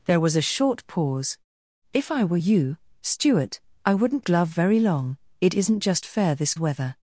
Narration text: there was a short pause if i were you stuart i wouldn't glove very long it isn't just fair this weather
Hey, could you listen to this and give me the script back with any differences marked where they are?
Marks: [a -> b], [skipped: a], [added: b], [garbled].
there was a short pause if i were you stuart i wouldn't glove very long it isn't just fair this weather